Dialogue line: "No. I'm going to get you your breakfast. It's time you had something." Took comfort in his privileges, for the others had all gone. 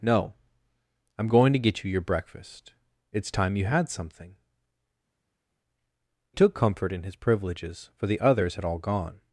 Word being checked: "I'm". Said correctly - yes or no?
yes